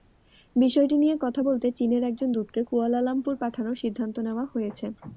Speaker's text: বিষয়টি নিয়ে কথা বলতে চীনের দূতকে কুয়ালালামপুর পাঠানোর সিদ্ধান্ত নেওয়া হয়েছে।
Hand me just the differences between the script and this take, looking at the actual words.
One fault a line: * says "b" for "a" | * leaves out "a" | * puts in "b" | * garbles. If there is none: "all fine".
* puts in "একজন"